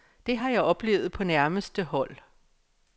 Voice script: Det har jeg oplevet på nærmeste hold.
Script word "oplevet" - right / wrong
right